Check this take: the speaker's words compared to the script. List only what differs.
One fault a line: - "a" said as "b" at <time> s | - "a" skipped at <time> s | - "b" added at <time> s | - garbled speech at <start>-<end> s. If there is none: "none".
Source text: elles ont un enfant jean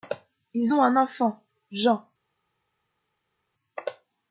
- "elles" said as "ils" at 0.6 s